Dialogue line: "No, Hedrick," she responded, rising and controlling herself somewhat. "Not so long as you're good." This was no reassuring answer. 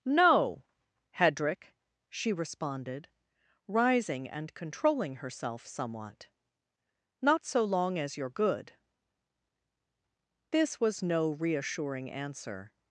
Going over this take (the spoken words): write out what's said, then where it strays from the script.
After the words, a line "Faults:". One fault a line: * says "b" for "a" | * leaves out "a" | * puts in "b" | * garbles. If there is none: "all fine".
"No, Hedrick," she responded, rising and controlling herself somewhat. "Not so long as you're good." This was no reassuring answer.
Faults:
all fine